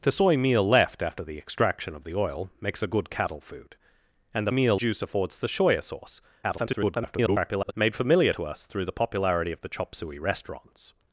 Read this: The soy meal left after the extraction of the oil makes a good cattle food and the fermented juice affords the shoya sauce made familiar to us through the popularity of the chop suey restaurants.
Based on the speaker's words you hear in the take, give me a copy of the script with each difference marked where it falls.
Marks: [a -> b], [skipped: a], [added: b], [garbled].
The soy meal left after the extraction of the oil makes a good cattle food and the [fermented -> meal] juice affords the shoya sauce [garbled] made familiar to us through the popularity of the chop suey restaurants.